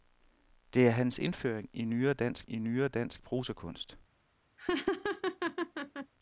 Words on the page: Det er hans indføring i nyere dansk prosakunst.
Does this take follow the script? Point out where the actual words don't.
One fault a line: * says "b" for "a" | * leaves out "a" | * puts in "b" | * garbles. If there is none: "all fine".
* puts in "i nyere dansk"